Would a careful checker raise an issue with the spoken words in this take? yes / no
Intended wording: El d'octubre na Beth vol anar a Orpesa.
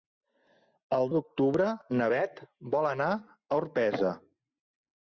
no